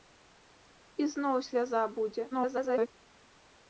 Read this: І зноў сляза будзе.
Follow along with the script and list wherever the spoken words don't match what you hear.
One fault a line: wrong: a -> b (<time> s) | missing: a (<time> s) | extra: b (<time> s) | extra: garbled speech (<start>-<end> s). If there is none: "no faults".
extra: garbled speech (2.3-2.9 s)